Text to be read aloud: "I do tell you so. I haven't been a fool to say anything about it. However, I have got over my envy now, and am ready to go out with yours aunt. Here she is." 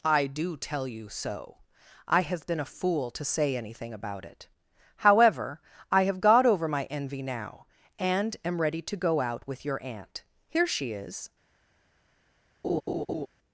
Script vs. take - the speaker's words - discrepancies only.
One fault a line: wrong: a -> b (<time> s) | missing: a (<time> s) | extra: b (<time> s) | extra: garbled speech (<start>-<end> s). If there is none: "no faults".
wrong: haven't -> have (2.2 s)
wrong: yours -> your (9.7 s)